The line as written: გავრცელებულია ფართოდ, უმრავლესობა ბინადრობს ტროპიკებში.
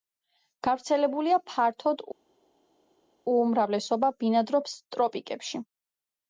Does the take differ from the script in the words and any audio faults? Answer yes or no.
no